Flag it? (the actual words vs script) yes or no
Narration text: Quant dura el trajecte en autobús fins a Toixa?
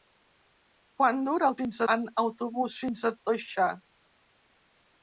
yes